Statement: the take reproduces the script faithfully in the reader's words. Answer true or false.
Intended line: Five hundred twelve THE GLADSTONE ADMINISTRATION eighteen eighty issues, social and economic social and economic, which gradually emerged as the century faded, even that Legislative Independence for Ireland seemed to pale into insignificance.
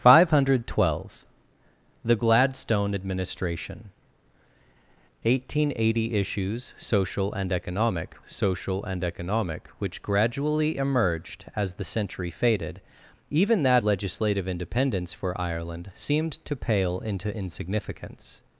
true